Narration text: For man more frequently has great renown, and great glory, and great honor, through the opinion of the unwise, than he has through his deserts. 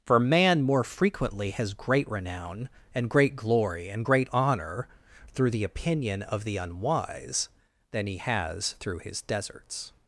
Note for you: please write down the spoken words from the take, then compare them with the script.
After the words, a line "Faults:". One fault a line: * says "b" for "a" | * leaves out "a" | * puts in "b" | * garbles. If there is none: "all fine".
For man more frequently has great renown, and great glory, and great honor, through the opinion of the unwise, than he has through his deserts.
Faults:
all fine